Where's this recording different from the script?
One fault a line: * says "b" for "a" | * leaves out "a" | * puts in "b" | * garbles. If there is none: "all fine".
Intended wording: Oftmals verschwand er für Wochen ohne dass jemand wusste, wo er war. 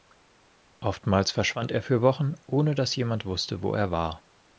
all fine